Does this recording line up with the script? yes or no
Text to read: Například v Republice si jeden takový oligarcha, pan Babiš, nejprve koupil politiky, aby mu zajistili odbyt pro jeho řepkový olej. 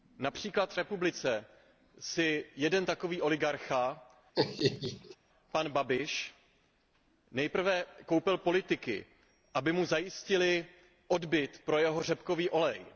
yes